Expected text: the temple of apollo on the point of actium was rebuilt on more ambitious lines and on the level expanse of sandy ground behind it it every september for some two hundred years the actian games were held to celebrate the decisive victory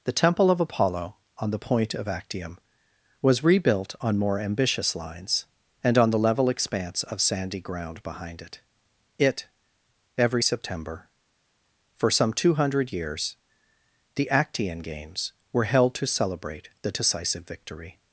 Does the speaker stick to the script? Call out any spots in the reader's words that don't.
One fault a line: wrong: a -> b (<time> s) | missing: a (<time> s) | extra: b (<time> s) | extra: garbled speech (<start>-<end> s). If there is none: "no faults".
no faults